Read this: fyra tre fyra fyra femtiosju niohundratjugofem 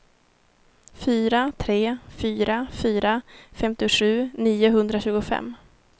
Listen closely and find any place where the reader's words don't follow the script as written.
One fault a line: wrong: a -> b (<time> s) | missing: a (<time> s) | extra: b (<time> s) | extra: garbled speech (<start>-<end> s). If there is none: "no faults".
no faults